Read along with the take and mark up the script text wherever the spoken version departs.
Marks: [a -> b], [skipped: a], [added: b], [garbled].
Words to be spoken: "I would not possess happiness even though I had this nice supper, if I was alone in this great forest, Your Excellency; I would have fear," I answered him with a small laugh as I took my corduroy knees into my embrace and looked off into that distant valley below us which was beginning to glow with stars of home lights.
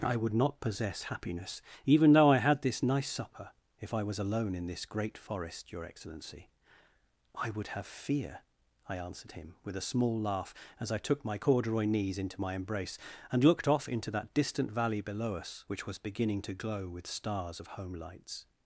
"I would not possess happiness even though I had this nice supper, if I was alone in this great forest, Your Excellency; I would have fear," I answered him with a small laugh as I took my corduroy knees into my embrace and looked off into that distant valley below us which was beginning to glow with stars of home lights.